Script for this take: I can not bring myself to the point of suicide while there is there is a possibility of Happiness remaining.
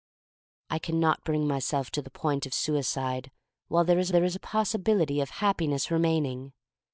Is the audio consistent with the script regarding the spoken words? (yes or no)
yes